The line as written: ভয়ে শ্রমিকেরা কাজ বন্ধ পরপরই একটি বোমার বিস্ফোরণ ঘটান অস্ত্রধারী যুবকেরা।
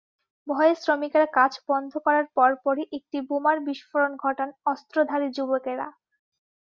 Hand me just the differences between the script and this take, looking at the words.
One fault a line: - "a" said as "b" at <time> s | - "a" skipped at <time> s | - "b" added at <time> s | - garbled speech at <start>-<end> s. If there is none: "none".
- "করার" added at 2.0 s